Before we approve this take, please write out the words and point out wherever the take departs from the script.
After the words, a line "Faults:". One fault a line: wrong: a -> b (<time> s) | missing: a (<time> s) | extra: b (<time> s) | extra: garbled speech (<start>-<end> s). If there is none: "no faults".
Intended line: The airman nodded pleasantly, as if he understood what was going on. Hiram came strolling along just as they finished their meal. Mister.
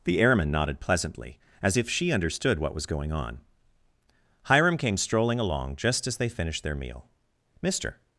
The airman nodded pleasantly, as if she understood what was going on. Hiram came strolling along just as they finished their meal. Mister.
Faults:
wrong: he -> she (1.9 s)